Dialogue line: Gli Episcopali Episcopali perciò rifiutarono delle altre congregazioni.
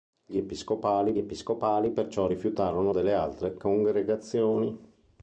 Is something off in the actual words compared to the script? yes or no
no